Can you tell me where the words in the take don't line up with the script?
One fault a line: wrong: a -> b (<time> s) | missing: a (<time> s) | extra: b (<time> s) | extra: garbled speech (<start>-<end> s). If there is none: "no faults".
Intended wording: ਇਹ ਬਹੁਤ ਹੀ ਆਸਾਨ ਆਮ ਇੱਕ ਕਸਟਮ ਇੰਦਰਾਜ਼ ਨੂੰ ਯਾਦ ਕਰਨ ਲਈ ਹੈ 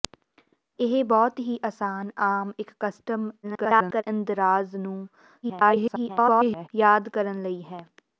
extra: garbled speech (3.4-4.0 s)
extra: garbled speech (5.4-6.7 s)